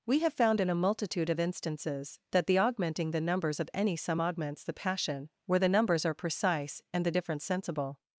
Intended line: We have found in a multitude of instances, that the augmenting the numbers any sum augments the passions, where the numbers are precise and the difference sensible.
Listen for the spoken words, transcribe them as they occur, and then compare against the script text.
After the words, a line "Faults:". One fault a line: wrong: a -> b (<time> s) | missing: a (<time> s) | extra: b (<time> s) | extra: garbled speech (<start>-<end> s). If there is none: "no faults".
We have found in a multitude of instances, that the augmenting the numbers of any sum augments the passion, where the numbers are precise and the difference sensible.
Faults:
extra: of (3.6 s)
wrong: passions -> passion (4.7 s)